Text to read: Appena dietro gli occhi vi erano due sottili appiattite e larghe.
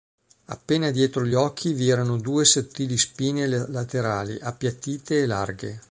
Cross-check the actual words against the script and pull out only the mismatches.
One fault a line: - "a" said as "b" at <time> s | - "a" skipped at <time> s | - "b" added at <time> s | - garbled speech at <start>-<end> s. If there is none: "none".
- "spine laterali" added at 3.0 s